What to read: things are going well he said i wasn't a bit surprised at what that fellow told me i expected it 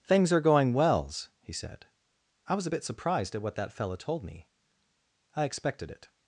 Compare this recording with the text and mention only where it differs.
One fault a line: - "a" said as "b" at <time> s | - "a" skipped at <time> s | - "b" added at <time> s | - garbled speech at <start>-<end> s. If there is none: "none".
- "well" said as "wells" at 0.7 s
- "wasn't" said as "was" at 2.5 s